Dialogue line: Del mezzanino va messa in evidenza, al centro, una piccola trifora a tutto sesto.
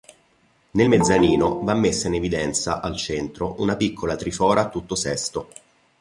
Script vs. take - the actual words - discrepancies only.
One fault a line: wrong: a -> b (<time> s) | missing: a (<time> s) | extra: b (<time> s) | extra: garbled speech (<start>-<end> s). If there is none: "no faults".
wrong: Del -> Nel (0.7 s)